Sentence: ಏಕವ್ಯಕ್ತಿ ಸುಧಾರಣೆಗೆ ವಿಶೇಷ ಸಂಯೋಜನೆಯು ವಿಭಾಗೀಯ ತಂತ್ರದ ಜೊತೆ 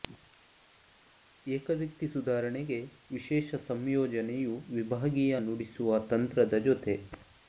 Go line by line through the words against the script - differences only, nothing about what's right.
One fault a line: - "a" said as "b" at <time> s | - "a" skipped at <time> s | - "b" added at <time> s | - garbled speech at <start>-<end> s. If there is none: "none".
- "ನುಡಿಸುವ" added at 5.4 s